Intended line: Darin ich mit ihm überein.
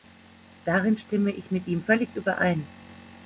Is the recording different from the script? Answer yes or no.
yes